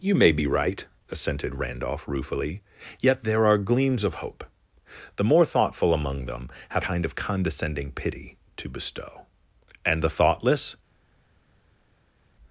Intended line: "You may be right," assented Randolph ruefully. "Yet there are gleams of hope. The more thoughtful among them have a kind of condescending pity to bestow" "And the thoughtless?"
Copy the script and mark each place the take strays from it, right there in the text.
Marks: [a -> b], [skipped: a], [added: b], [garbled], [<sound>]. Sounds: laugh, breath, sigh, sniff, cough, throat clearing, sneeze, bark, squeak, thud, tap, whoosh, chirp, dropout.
"You may be right," assented Randolph ruefully. "Yet there are gleams of hope. The more thoughtful among them have [skipped: a] kind of condescending pity to bestow" "And the thoughtless?"